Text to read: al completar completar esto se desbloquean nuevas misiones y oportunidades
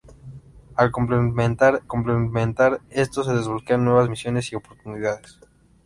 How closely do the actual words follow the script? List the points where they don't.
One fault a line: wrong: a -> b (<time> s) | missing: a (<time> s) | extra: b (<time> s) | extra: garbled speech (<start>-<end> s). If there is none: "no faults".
no faults